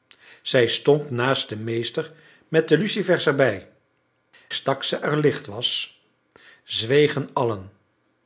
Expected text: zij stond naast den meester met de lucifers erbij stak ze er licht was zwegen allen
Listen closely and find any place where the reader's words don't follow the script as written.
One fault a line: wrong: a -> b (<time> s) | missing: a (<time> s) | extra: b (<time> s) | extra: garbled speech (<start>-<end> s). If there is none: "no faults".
no faults